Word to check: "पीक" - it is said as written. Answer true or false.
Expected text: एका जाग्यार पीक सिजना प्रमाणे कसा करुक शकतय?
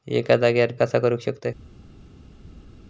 false